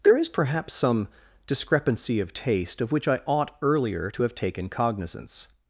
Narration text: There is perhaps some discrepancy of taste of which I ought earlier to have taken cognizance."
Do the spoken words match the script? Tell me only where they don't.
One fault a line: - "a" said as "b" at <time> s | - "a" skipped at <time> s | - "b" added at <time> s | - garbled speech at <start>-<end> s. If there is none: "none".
none